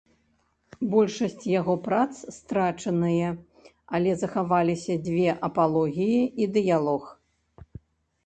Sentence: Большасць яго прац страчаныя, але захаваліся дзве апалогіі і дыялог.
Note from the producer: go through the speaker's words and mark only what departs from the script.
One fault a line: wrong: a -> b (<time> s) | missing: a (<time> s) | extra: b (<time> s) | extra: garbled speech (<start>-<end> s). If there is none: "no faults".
no faults